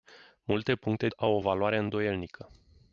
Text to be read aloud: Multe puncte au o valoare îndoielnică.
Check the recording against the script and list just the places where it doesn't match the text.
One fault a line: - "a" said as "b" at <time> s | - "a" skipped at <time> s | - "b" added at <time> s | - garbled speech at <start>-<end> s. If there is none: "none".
none